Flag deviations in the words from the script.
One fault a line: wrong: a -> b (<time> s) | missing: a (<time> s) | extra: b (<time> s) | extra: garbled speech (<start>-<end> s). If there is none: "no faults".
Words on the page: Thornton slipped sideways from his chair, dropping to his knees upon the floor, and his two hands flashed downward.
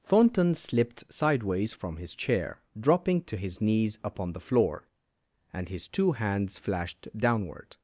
no faults